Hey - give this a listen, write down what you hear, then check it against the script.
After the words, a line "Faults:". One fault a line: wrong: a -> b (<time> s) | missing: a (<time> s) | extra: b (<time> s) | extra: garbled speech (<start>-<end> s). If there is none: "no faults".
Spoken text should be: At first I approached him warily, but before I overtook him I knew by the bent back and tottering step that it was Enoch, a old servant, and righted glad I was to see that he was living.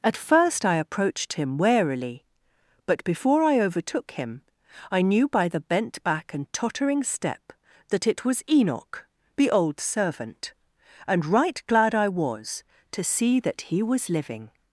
At first I approached him warily, but before I overtook him I knew by the bent back and tottering step that it was Enoch, the old servant, and right glad I was to see that he was living.
Faults:
wrong: a -> the (9.3 s)
wrong: righted -> right (11.2 s)